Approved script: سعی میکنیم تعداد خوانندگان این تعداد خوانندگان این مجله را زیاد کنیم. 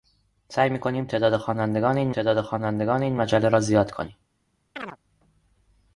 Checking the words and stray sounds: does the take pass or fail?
fail